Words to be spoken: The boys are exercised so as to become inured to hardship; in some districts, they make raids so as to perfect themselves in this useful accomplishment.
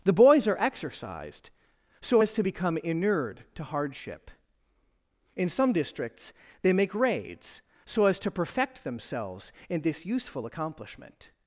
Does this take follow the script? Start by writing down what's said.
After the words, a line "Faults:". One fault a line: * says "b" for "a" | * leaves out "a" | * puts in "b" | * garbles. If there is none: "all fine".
The boys are exercised so as to become inured to hardship; in some districts, they make raids so as to perfect themselves in this useful accomplishment.
Faults:
all fine